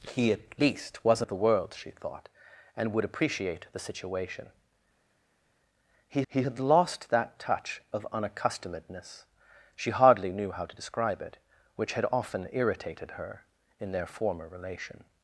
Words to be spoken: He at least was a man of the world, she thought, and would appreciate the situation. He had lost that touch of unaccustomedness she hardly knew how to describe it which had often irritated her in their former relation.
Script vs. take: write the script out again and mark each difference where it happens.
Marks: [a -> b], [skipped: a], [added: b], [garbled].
He at least was a [skipped: man] of the world, she thought, and would appreciate the situation. He [added: he] had lost that touch of unaccustomedness she hardly knew how to describe it which had often irritated her in their former relation.